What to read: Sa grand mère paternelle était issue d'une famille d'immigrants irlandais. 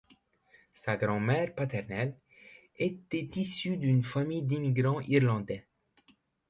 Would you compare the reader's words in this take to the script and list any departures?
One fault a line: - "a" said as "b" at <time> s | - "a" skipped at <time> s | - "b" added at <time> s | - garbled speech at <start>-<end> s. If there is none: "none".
none